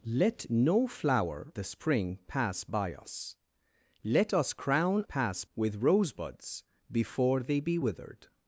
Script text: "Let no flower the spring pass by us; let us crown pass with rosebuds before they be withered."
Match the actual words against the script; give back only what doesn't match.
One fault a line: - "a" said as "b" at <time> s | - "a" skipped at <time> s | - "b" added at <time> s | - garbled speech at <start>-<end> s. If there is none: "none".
none